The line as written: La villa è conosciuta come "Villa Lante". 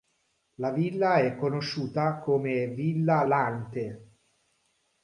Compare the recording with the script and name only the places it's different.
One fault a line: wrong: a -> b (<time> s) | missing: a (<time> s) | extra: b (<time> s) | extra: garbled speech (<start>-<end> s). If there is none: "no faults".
no faults